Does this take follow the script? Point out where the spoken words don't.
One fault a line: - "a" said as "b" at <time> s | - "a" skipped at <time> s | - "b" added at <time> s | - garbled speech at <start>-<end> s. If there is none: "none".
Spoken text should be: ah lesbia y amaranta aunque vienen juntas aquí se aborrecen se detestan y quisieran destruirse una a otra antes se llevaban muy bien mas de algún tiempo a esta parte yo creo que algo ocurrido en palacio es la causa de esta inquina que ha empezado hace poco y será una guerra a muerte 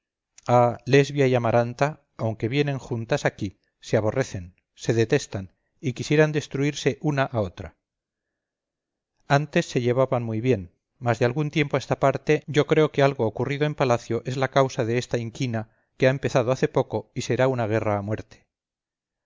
none